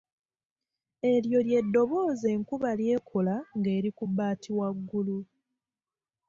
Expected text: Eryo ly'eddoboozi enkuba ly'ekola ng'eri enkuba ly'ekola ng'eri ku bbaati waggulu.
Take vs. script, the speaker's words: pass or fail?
fail